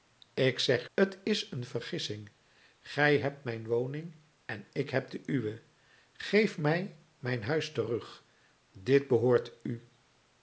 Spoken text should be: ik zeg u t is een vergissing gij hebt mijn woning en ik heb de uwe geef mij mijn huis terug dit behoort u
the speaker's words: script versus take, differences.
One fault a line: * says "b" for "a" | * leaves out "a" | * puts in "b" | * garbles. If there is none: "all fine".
* leaves out "u"